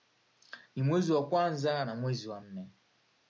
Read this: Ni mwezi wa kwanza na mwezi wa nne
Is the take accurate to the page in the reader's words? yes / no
yes